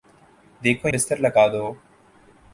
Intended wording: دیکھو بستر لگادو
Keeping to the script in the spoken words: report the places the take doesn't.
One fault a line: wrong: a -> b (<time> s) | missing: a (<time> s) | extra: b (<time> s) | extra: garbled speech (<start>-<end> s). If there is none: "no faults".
no faults